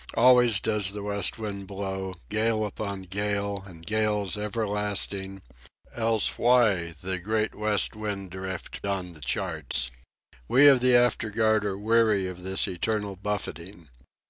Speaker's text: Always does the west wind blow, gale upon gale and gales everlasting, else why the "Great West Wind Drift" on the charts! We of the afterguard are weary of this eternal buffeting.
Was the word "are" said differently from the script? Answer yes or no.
no